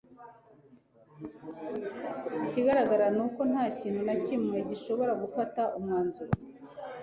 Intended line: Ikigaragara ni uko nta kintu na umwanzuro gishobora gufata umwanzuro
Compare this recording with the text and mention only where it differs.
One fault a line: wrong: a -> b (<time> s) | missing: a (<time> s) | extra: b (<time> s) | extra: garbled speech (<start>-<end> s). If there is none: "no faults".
wrong: umwanzuro -> kimwe (4.2 s)